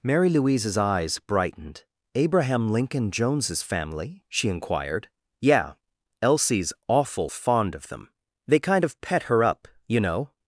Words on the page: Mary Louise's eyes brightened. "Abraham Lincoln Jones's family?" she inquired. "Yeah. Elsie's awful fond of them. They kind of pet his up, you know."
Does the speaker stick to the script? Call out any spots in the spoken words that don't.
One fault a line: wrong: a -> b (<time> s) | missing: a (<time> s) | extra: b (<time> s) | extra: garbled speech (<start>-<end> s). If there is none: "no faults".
wrong: his -> her (9.2 s)